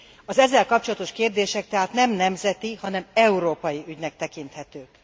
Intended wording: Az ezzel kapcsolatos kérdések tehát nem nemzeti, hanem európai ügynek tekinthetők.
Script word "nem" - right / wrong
right